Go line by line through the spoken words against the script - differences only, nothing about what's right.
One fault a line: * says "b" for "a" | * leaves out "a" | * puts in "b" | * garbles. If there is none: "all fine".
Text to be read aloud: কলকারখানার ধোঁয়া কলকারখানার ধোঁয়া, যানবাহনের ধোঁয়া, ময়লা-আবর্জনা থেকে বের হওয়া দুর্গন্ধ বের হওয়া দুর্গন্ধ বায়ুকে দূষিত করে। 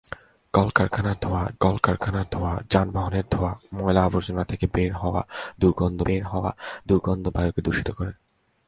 all fine